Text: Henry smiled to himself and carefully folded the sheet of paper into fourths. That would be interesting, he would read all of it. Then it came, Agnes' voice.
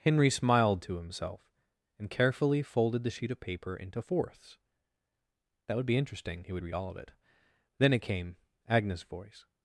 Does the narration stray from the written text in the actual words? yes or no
no